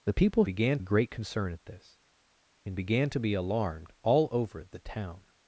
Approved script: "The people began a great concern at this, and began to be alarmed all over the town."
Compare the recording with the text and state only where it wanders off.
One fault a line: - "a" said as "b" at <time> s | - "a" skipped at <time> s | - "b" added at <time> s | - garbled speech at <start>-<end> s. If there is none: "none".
none